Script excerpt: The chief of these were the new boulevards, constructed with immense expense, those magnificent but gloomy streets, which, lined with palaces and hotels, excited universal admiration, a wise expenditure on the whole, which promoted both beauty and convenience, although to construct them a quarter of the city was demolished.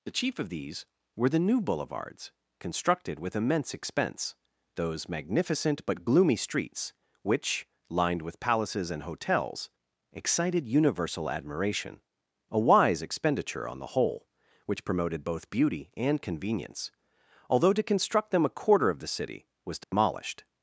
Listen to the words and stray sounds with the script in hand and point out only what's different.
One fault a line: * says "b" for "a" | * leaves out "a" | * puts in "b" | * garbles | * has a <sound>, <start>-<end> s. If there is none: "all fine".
* has a dropout, 19.8-19.9 s